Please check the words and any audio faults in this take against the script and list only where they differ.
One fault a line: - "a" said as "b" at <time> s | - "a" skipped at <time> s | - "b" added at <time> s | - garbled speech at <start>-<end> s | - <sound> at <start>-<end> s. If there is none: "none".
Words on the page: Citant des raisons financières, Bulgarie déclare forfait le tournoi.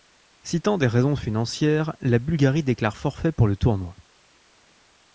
- "la" added at 2.0 s
- "pour" added at 3.3 s